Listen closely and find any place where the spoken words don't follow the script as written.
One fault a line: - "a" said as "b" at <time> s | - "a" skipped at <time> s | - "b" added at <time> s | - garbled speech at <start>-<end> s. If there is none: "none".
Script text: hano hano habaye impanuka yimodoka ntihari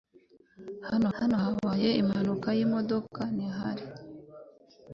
none